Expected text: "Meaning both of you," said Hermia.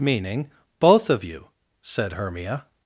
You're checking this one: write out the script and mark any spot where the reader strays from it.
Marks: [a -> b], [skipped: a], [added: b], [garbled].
"Meaning both of you," said Hermia.